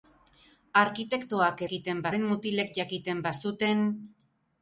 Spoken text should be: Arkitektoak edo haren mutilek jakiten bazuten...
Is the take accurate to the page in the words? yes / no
no